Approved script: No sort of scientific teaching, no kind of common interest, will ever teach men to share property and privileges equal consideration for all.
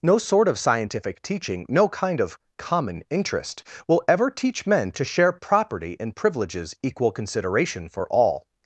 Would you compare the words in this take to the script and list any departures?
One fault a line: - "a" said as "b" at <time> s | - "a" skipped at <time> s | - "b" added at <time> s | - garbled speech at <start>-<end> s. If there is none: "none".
none